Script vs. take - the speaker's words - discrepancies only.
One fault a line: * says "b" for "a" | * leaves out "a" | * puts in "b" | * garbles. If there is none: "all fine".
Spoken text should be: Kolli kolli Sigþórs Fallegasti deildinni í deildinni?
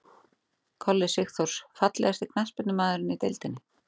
* leaves out "kolli"
* says "knattspyrnumaðurinn" for "deildinni"